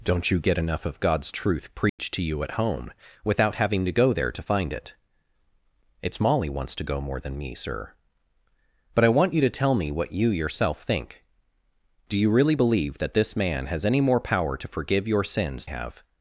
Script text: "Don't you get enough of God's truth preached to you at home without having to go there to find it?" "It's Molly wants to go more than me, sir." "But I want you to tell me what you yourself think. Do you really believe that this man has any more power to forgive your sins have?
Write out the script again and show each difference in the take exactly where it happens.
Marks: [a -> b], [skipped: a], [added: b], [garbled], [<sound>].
"Don't you get enough of God's truth preached [dropout] to you at home without having to go there to find it?" "It's Molly wants to go more than me, sir." "But I want you to tell me what you yourself think. Do you really believe that this man has any more power to forgive your sins have?